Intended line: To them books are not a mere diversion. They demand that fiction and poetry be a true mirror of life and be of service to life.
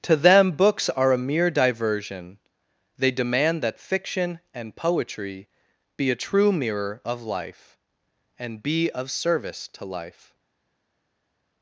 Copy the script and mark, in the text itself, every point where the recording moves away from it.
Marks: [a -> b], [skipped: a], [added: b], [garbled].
To them books are [skipped: not] a mere diversion. They demand that fiction and poetry be a true mirror of life and be of service to life.